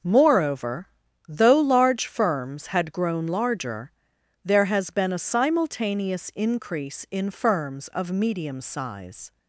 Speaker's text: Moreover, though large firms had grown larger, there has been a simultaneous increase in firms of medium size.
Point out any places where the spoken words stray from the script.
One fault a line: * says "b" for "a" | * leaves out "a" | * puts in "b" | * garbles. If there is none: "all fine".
all fine